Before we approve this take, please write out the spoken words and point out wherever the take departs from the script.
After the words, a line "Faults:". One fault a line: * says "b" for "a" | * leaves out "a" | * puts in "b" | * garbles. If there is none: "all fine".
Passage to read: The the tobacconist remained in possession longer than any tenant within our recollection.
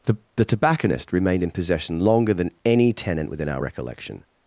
The the tobacconist remained in possession longer than any tenant within our recollection.
Faults:
all fine